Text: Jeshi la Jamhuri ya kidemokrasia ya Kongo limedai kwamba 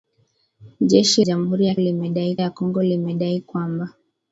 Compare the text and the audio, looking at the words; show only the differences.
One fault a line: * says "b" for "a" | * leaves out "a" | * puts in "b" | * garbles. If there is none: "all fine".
* leaves out "la"
* says "limedai" for "kidemokrasia"